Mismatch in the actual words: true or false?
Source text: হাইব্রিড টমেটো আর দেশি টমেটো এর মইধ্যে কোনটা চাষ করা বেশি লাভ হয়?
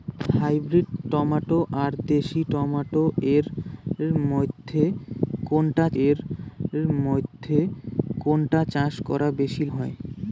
true